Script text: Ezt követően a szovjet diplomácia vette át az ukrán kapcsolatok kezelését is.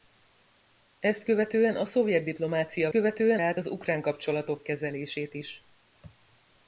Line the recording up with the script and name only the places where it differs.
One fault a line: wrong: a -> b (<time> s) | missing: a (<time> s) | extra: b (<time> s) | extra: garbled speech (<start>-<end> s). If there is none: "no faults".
wrong: vette -> követően (2.9 s)